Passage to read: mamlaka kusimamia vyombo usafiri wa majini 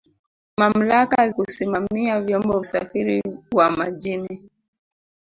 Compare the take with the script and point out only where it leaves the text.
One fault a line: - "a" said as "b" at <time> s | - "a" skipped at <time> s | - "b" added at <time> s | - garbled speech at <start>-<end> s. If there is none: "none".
none